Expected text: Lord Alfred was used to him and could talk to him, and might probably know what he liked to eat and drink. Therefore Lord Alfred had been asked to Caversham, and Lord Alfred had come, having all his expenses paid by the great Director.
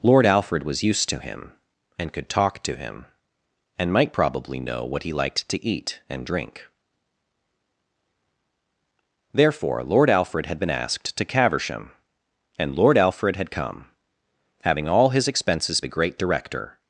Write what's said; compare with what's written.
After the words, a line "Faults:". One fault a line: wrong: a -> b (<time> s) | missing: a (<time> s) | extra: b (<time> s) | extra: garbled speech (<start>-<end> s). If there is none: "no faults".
Lord Alfred was used to him and could talk to him, and might probably know what he liked to eat and drink. Therefore Lord Alfred had been asked to Caversham, and Lord Alfred had come, having all his expenses the great Director.
Faults:
missing: paid by (15.8 s)